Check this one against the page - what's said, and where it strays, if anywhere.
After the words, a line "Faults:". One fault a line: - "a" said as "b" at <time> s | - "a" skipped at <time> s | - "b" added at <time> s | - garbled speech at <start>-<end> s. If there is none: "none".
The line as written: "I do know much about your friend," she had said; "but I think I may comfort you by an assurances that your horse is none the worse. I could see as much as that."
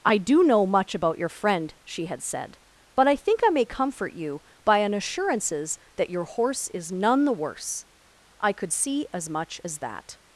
"I do know much about your friend," she had said; "but I think I may comfort you by an assurances that your horse is none the worse. I could see as much as that."
Faults:
none